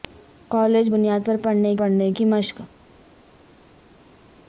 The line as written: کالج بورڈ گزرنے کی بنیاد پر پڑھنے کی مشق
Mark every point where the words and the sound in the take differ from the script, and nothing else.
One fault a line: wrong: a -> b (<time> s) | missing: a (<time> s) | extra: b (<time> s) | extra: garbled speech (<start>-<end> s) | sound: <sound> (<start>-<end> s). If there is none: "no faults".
missing: بورڈ گزرنے کی (0.9 s)
extra: پڑھنے (1.8 s)